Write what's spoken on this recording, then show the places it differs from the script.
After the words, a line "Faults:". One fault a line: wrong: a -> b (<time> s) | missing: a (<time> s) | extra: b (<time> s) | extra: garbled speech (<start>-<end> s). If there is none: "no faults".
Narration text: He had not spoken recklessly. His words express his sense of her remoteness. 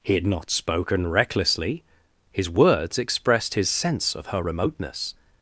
He had not spoken recklessly. His words expressed his sense of her remoteness.
Faults:
wrong: express -> expressed (3.0 s)